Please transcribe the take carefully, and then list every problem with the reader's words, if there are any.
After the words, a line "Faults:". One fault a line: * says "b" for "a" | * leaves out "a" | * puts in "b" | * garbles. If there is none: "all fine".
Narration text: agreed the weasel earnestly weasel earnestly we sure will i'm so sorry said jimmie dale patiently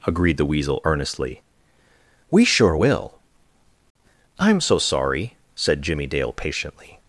agreed the weasel earnestly we sure will i'm so sorry said jimmie dale patiently
Faults:
* leaves out "weasel earnestly"